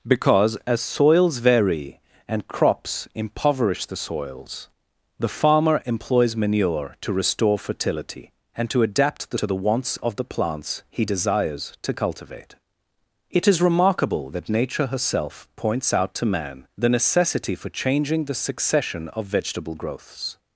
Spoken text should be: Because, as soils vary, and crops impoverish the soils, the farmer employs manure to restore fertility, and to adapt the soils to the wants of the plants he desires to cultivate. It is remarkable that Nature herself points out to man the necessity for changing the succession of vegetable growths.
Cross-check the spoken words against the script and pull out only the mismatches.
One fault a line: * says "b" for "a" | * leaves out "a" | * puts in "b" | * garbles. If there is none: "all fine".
* leaves out "soils"